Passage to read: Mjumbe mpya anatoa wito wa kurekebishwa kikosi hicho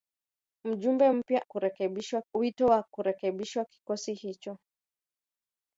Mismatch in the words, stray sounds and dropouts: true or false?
true